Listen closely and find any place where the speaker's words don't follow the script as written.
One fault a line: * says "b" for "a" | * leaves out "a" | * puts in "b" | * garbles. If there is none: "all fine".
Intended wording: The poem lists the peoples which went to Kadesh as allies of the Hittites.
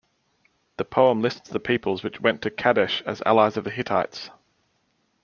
all fine